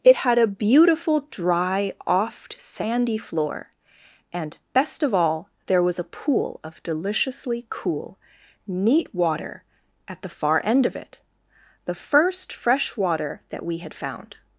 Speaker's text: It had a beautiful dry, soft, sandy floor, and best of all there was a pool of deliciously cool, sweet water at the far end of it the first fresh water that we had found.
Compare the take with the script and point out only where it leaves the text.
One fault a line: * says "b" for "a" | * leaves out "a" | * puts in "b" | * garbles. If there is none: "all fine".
* says "oft" for "soft"
* says "neat" for "sweet"